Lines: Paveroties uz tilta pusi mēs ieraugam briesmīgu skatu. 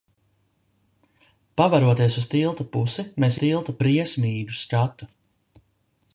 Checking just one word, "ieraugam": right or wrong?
wrong